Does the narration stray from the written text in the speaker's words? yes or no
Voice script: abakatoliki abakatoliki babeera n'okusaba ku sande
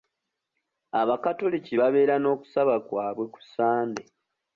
yes